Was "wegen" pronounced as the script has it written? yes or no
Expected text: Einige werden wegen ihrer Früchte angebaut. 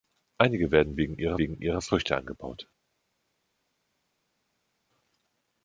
yes